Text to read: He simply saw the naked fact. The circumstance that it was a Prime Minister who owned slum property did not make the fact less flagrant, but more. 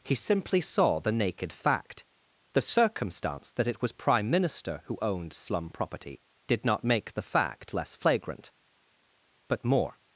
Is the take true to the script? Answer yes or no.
no